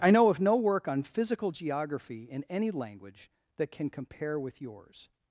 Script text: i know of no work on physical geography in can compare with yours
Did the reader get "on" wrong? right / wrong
right